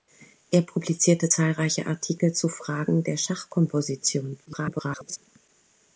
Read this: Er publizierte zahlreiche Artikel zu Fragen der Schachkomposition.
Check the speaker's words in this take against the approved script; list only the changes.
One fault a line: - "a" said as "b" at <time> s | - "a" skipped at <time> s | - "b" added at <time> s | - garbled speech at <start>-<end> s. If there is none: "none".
- garbled speech at 4.5-5.2 s